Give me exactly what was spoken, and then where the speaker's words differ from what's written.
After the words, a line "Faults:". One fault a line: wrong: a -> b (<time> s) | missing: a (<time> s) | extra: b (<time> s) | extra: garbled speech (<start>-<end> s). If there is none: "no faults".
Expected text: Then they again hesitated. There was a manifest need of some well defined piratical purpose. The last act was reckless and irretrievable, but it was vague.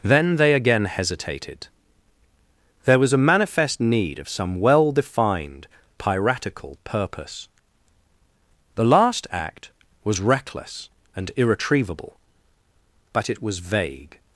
Then they again hesitated. There was a manifest need of some well defined piratical purpose. The last act was reckless and irretrievable, but it was vague.
Faults:
no faults